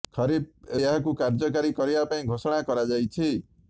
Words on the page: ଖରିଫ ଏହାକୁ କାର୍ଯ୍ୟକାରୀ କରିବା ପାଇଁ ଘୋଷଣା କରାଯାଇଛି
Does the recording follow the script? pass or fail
pass